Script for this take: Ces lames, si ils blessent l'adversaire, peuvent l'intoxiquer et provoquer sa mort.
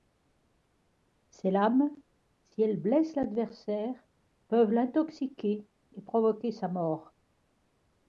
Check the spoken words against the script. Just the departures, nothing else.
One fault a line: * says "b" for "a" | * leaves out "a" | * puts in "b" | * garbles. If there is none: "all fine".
* says "elles" for "ils"